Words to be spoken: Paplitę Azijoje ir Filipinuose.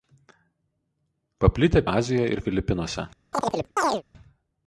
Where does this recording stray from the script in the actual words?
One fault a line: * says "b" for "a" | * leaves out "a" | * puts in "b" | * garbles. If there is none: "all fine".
all fine